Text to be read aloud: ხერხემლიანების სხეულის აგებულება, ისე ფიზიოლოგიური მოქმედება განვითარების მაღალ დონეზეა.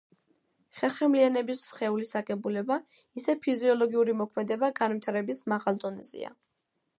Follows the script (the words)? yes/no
yes